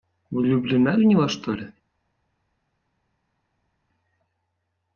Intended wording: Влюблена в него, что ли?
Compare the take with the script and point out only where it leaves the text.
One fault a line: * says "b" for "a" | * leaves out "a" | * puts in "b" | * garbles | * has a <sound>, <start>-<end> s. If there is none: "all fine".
all fine